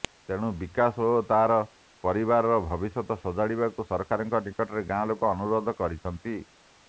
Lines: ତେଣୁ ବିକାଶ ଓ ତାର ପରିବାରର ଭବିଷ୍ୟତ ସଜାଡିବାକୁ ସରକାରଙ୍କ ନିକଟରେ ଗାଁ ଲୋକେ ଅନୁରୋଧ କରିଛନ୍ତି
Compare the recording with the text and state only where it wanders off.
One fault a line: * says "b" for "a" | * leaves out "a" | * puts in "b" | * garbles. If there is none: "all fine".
all fine